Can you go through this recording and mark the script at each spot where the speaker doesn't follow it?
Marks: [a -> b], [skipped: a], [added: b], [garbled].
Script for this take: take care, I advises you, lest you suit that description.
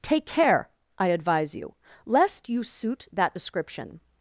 take care, I [advises -> advise] you, lest you suit that description.